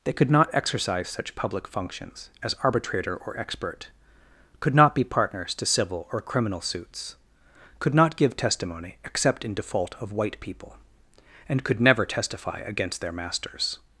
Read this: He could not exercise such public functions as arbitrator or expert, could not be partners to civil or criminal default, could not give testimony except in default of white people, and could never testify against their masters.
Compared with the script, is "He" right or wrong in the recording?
wrong